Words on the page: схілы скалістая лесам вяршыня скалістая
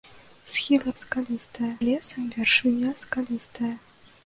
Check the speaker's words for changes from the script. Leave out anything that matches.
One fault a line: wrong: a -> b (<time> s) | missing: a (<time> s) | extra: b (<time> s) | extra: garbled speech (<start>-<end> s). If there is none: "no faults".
no faults